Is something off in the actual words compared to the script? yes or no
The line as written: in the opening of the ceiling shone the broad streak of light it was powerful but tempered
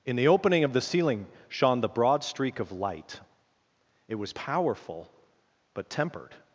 no